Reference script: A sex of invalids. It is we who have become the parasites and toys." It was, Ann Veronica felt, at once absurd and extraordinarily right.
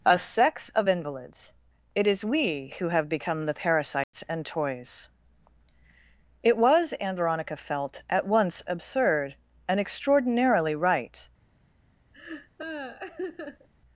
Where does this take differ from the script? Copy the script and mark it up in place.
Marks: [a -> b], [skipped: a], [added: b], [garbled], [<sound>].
A sex of invalids. It is we who have become the parasites [dropout] and toys." It was, Ann Veronica felt, at once absurd and extraordinarily right. [laugh]